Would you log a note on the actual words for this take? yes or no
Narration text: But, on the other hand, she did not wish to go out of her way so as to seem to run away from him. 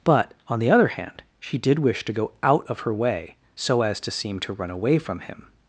yes